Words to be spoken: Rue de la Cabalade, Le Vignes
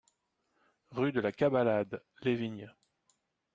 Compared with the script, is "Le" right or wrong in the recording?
wrong